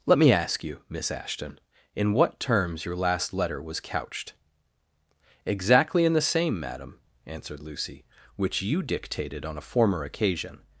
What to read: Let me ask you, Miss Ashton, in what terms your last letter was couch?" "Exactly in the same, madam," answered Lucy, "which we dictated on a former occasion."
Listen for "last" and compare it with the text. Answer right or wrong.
right